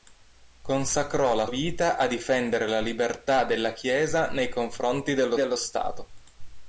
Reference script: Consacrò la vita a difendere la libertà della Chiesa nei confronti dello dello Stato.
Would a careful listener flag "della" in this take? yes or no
no